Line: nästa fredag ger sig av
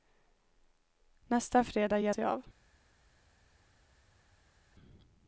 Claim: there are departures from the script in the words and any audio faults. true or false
false